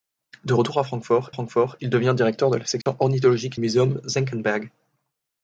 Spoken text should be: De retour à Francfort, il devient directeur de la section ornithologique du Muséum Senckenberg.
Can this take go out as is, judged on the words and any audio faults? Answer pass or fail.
fail